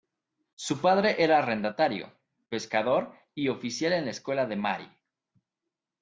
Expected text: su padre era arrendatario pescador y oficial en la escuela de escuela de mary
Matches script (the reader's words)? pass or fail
fail